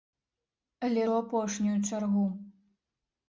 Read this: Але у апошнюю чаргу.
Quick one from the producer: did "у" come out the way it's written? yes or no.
yes